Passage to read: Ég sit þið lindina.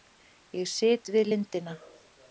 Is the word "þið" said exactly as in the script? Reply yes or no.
no